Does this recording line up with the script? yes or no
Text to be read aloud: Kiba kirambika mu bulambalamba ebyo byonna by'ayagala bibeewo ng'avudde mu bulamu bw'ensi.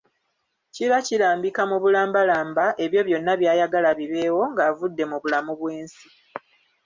yes